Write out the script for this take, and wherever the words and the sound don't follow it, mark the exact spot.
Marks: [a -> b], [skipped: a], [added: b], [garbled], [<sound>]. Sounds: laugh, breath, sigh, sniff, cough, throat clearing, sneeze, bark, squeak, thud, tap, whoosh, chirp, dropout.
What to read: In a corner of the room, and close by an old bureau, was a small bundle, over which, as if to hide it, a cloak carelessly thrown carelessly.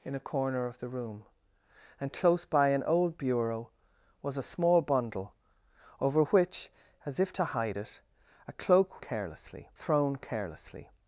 In a corner of the room, and close by an old bureau, was a small bundle, over which, as if to hide it, a cloak carelessly thrown carelessly.